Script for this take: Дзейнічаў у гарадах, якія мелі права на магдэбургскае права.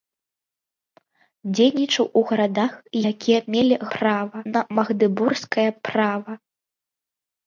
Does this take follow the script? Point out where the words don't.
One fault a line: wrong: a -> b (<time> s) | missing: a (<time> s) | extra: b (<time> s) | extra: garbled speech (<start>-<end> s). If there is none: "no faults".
no faults